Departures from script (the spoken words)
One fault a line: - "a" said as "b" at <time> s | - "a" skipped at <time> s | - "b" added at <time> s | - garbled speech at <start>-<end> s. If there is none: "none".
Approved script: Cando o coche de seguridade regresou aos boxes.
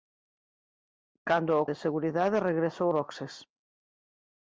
- "coche" skipped at 1.7 s
- "aos" skipped at 2.9 s